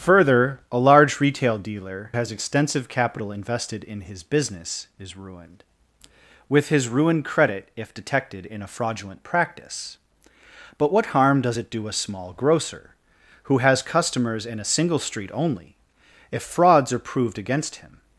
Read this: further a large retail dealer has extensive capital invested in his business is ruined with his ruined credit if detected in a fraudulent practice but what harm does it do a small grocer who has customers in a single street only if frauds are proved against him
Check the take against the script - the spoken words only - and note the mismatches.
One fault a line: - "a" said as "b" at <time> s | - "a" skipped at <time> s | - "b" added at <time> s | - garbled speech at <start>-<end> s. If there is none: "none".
none